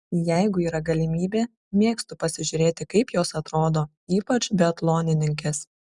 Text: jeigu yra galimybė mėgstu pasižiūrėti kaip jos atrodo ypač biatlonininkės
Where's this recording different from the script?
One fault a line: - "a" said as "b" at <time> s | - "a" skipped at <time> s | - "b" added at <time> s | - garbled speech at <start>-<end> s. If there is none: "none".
none